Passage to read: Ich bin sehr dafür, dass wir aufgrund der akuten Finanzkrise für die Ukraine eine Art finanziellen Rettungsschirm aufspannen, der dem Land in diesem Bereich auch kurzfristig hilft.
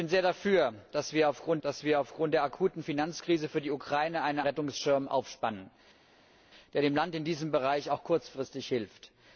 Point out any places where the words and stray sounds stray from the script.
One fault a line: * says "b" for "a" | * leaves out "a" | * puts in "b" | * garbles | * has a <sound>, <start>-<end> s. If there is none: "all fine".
* puts in "dass wir aufgrund"
* leaves out "Art finanziellen"